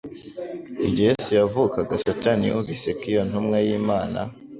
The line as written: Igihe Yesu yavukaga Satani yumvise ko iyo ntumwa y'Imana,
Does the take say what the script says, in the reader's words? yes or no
yes